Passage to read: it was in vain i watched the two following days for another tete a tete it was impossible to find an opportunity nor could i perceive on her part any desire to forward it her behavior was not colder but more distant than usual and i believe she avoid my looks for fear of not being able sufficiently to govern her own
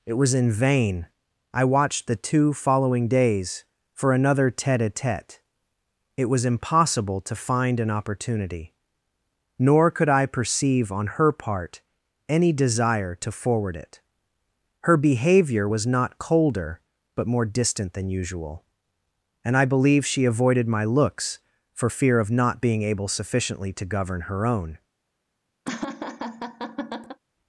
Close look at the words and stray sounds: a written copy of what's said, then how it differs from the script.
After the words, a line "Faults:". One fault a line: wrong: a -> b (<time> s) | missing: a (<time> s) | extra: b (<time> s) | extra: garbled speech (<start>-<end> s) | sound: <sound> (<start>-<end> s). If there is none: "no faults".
it was in vain i watched the two following days for another tete a tete it was impossible to find an opportunity nor could i perceive on her part any desire to forward it her behavior was not colder but more distant than usual and i believe she avoided my looks for fear of not being able sufficiently to govern her own
Faults:
wrong: avoid -> avoided (20.2 s)
sound: laugh (25.6-27.2 s)